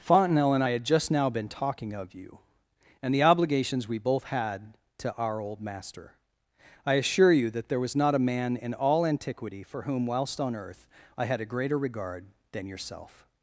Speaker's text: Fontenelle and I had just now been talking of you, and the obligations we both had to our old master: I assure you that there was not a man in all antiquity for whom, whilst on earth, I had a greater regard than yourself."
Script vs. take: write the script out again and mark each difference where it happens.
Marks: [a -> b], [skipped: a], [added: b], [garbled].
Fontenelle and I had just now been talking of you, and the obligations we both had to our old master: I assure you that there was not a man in all antiquity for whom, whilst on earth, I had a greater regard than yourself."